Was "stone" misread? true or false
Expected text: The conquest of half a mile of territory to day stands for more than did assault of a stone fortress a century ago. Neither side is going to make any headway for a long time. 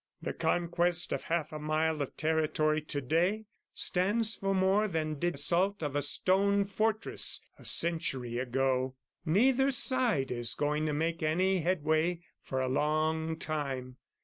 false